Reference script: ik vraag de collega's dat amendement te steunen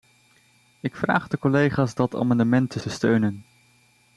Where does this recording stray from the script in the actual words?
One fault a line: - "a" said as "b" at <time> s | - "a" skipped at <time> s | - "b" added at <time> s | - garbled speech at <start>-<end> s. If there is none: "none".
- "te" added at 2.8 s